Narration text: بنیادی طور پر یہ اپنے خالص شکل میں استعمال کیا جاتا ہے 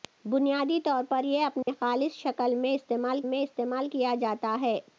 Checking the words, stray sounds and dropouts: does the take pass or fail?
fail